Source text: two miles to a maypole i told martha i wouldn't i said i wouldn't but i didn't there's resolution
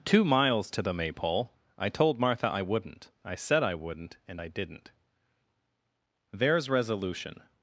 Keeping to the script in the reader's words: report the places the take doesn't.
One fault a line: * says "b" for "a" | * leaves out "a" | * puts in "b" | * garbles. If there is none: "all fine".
* says "the" for "a"
* says "and" for "but"